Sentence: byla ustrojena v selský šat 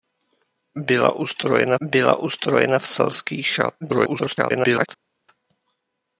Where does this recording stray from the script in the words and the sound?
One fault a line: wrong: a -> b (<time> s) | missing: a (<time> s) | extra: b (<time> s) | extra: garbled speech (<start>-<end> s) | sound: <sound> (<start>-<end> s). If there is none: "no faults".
extra: byla ustrojena (1.8 s)
extra: garbled speech (3.8-4.9 s)